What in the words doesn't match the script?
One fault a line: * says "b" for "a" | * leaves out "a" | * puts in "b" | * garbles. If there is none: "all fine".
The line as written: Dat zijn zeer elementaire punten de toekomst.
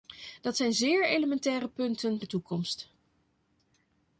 all fine